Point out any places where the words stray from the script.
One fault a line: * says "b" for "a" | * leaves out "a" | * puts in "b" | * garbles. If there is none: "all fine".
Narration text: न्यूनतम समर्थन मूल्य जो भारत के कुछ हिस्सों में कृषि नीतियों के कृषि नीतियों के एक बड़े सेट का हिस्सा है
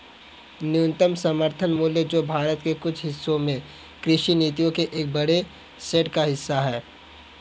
* leaves out "कृषि नीतियों के"